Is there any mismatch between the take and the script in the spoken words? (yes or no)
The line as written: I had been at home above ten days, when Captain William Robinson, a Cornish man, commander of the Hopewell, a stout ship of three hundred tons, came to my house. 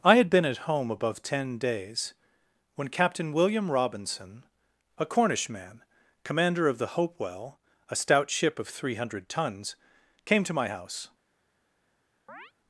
no